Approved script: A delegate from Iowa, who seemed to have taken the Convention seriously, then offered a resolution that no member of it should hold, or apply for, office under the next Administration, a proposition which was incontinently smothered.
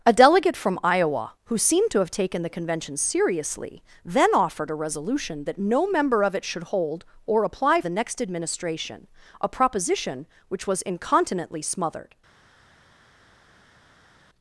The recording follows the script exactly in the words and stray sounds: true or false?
false